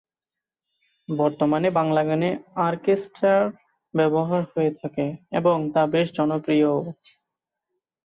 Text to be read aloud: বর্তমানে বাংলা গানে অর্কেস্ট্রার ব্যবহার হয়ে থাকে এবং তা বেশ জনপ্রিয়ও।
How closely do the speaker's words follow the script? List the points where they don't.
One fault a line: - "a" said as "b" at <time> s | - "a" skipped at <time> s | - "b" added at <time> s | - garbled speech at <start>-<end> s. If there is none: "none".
none